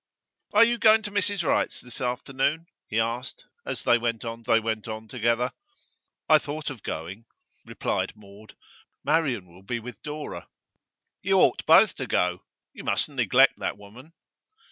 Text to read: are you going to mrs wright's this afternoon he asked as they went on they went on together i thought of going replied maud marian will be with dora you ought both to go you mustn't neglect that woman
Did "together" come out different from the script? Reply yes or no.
no